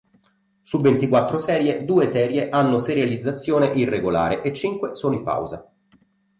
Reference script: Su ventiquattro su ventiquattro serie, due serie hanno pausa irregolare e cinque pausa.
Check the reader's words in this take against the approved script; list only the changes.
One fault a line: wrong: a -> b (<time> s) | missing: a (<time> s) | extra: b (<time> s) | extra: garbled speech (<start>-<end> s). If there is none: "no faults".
missing: su ventiquattro (1.4 s)
wrong: pausa -> serializzazione (2.8 s)
extra: sono in (5.0 s)